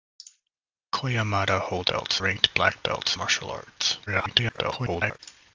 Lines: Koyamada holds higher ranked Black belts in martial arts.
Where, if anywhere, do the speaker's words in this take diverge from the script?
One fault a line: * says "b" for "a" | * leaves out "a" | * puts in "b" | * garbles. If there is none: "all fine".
* says "belts" for "higher"
* leaves out "in"
* garbles